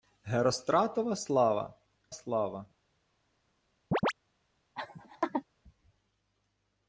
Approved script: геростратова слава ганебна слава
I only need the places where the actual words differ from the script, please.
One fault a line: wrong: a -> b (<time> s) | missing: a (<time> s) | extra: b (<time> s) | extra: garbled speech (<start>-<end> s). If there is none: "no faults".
missing: ганебна (1.7 s)